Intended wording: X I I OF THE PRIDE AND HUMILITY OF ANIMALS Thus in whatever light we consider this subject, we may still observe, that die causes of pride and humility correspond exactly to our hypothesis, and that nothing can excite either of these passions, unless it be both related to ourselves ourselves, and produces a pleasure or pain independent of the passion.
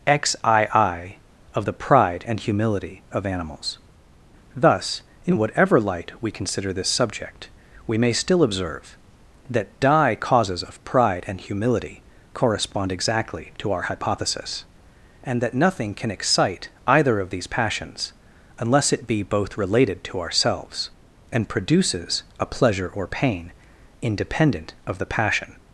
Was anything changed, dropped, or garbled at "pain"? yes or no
no